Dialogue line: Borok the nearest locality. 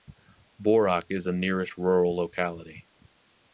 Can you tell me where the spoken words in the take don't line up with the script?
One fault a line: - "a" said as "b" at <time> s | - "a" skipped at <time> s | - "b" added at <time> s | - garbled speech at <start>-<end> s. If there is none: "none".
- "is" added at 1.1 s
- "rural" added at 1.8 s